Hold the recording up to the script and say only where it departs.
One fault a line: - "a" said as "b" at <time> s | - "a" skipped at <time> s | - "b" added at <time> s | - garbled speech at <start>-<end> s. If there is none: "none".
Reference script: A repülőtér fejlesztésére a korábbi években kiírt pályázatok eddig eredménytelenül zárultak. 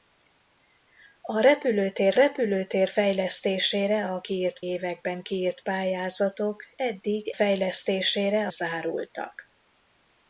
- "repülőtér" added at 2.1 s
- "korábbi" said as "kiírt" at 4.2 s
- "eredménytelenül" said as "fejlesztésére" at 7.3 s